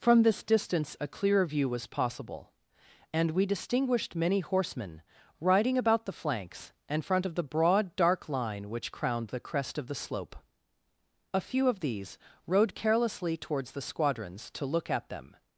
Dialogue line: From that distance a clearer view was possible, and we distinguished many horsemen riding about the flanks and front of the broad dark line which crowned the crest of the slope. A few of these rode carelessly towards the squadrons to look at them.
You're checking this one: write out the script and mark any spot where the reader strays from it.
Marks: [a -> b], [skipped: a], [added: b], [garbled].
From [that -> this] distance a clearer view was possible, and we distinguished many horsemen riding about the flanks and front of the broad dark line which crowned the crest of the slope. A few of these rode carelessly towards the squadrons to look at them.